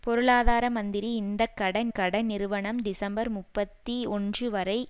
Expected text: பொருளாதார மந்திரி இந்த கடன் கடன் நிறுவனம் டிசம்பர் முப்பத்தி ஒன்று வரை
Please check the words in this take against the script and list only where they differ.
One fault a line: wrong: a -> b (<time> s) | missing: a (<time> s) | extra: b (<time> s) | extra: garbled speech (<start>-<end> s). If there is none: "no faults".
no faults